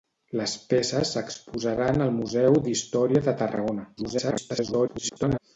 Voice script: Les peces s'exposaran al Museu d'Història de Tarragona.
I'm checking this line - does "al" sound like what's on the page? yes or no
yes